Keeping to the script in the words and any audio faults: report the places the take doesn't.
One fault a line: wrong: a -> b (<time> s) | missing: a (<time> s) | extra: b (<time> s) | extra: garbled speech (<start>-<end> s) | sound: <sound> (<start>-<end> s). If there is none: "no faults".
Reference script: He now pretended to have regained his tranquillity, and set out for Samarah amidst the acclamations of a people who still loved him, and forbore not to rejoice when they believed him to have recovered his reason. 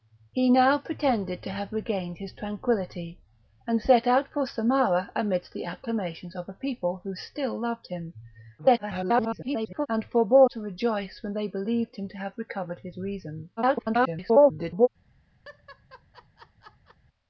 extra: garbled speech (8.6-9.9 s)
missing: not (10.5 s)
extra: garbled speech (13.6-14.9 s)
sound: laugh (15.4-17.0 s)